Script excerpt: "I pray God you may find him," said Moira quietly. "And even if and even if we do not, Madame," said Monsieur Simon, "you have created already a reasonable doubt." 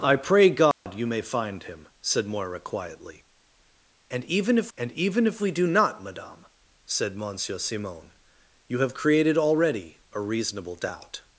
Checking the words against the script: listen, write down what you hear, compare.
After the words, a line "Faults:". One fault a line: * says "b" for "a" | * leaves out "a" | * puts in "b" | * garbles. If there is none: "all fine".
"I pray God you may find him," said Moira quietly. "And even if and even if we do not, Madame," said Monsieur Simon, "you have created already a reasonable doubt."
Faults:
all fine